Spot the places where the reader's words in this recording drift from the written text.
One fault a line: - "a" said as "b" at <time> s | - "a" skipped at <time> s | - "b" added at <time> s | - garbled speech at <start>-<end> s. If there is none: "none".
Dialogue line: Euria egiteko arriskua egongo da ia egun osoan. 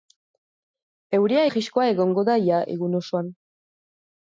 - "egiteko" skipped at 1.4 s